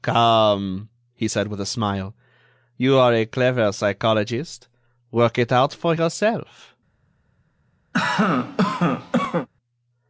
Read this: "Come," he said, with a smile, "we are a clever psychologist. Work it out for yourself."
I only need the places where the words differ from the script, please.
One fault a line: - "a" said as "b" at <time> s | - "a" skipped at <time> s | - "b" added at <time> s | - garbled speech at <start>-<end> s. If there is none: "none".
- "we" said as "you" at 2.8 s